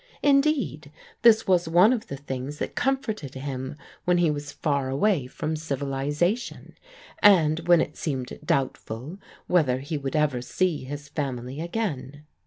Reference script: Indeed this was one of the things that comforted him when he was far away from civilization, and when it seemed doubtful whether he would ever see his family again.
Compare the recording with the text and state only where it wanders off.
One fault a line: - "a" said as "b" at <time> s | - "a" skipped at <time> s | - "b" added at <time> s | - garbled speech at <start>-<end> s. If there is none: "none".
none